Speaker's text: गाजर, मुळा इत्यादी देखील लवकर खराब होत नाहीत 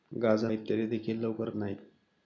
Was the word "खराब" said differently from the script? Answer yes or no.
yes